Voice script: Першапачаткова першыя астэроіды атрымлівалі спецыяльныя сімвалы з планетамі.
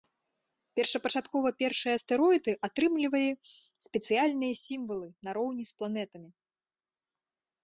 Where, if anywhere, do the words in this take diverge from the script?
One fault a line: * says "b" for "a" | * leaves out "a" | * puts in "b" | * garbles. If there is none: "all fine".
* puts in "нароўні"